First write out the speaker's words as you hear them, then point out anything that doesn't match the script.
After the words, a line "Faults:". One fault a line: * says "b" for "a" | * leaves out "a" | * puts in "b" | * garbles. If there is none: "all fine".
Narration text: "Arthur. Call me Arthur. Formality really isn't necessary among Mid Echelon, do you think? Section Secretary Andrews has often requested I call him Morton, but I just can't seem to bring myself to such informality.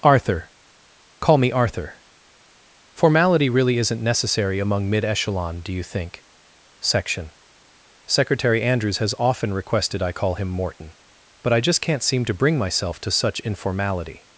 "Arthur. Call me Arthur. Formality really isn't necessary among Mid Echelon, do you think? Section Secretary Andrews has often requested I call him Morton, but I just can't seem to bring myself to such informality.
Faults:
all fine